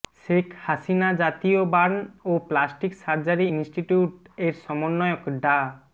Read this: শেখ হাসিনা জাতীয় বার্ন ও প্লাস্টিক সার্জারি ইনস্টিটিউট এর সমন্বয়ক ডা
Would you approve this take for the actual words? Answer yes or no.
yes